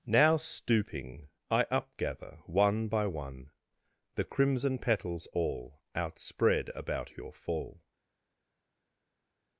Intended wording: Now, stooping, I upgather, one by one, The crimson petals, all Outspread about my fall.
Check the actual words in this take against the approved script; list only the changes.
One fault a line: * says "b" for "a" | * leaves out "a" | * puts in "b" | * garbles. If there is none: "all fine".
* says "your" for "my"